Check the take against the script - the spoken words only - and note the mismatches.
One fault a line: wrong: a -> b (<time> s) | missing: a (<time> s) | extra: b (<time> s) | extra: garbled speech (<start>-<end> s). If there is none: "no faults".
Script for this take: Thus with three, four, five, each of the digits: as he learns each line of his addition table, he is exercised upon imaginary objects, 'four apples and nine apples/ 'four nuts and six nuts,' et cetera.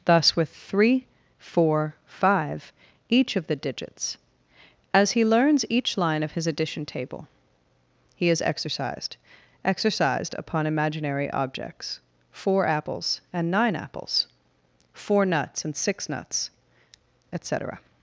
extra: exercised (9.6 s)